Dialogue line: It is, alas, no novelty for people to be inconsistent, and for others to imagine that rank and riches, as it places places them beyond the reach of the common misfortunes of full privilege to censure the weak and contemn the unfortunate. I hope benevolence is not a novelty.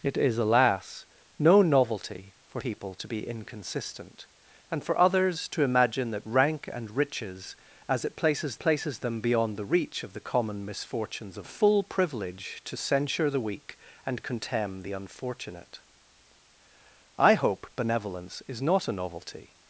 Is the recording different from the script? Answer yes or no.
no